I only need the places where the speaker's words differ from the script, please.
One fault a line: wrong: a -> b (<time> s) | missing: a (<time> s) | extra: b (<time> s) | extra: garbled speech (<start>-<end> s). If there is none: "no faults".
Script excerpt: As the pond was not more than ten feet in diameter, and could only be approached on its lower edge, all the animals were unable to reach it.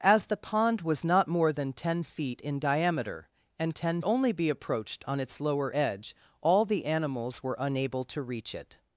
wrong: could -> ten (3.7 s)